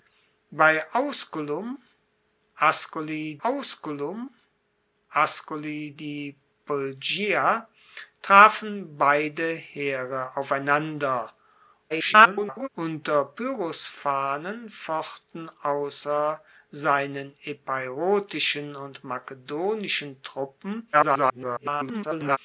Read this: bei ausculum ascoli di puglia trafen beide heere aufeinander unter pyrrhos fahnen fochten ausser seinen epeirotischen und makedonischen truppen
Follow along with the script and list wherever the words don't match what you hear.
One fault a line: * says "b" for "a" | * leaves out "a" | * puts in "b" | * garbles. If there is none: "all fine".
* puts in "ausculum ascoli"
* garbles
* garbles